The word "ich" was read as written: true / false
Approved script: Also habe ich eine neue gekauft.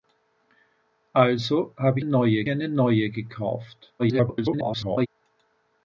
false